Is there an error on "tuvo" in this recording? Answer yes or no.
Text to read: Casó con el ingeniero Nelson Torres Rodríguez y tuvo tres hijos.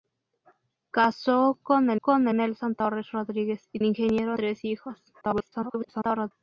yes